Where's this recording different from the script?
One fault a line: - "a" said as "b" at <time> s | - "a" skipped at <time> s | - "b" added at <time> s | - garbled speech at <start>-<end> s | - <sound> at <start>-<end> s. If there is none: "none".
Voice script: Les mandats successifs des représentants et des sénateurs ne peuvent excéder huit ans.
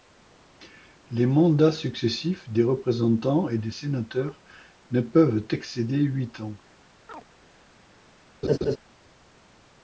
- chirp at 7.1-7.2 s
- laugh at 8.4-8.8 s